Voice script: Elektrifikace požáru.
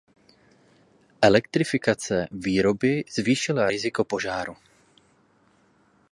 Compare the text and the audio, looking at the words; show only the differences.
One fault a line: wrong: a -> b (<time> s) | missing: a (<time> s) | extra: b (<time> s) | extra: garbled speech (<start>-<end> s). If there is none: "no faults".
extra: výroby zvýšila riziko (2.3 s)